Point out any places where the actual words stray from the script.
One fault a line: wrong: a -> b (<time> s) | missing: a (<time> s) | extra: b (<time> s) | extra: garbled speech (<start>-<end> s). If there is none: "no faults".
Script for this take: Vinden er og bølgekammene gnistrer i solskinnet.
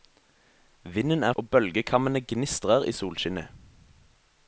no faults